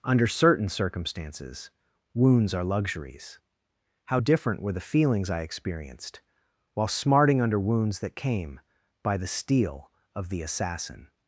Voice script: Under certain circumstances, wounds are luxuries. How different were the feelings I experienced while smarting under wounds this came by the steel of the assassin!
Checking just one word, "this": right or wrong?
wrong